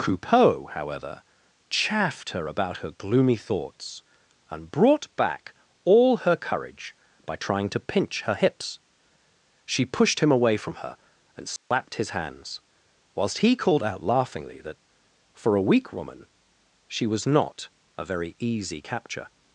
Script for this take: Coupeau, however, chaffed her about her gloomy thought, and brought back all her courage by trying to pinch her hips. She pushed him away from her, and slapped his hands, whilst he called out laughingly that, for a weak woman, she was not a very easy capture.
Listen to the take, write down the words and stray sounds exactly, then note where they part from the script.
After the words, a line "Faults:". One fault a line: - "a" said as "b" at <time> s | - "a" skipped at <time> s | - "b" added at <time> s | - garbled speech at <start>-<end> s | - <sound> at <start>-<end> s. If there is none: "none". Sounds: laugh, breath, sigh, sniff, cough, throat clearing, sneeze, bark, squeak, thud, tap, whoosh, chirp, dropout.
Coupeau, however, chaffed her about her gloomy thoughts, and brought back all her courage by trying to pinch her hips. She pushed him away from her, and slapped his hands, whilst he called out laughingly that, for a weak woman, she was not a very easy capture.
Faults:
- "thought" said as "thoughts" at 3.4 s
- dropout at 11.6-11.7 s